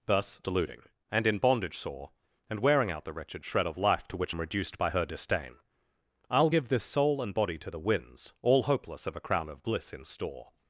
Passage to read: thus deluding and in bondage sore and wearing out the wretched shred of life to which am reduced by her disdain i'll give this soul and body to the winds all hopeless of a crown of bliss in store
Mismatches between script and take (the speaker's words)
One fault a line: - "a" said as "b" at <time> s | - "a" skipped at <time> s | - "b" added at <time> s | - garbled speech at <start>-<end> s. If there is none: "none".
none